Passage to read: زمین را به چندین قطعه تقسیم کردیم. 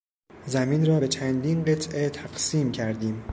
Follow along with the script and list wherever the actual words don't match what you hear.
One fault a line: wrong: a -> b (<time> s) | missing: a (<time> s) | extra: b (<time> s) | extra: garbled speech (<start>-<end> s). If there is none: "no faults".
no faults